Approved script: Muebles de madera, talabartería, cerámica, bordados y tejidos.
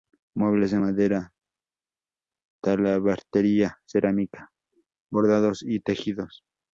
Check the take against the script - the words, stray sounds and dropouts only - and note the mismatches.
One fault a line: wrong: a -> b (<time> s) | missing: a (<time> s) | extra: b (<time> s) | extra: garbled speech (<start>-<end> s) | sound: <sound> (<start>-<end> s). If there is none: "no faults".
no faults